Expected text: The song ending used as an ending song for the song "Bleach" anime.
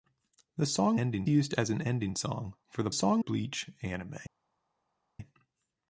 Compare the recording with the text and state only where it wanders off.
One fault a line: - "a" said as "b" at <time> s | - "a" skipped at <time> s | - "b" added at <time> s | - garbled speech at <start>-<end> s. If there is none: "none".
none